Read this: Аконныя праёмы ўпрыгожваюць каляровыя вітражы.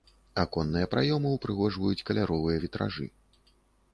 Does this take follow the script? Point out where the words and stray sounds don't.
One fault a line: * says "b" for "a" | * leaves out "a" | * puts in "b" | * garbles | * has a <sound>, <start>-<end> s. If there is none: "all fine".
all fine